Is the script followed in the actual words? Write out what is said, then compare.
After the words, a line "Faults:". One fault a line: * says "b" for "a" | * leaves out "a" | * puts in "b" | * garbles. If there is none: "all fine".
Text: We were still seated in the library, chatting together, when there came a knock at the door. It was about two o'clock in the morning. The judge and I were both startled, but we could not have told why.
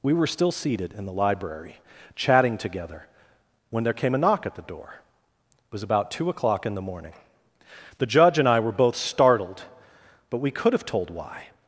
We were still seated in the library, chatting together, when there came a knock at the door. It was about two o'clock in the morning. The judge and I were both startled, but we could have told why.
Faults:
* leaves out "not"